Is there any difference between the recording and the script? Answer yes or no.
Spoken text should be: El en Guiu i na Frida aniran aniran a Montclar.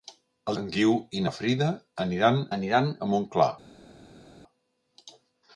no